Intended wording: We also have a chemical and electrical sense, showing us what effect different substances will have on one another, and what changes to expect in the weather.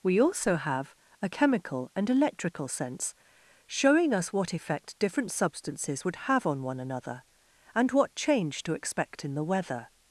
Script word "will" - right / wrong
wrong